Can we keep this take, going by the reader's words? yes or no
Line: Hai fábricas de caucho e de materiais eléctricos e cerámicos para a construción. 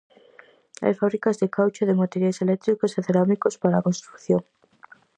yes